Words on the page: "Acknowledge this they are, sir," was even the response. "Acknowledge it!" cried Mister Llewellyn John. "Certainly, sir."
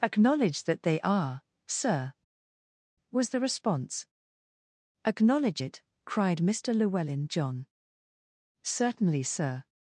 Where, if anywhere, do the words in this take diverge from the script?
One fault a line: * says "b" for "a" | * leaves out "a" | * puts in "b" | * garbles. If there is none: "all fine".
* says "that" for "this"
* leaves out "even"